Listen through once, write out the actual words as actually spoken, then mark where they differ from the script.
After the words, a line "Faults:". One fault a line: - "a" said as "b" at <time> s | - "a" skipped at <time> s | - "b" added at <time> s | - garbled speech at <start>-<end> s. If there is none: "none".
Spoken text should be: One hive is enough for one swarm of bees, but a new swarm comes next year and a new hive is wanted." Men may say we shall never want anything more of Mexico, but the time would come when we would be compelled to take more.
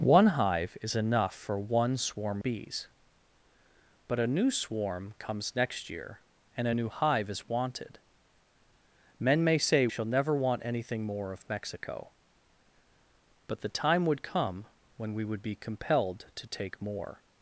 One hive is enough for one swarm bees, but a new swarm comes next year and a new hive is wanted." Men may say shall never want anything more of Mexico, but the time would come when we would be compelled to take more.
Faults:
- "of" skipped at 2.4 s
- "we" skipped at 9.9 s